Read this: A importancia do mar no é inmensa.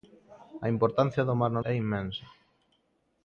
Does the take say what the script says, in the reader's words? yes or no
yes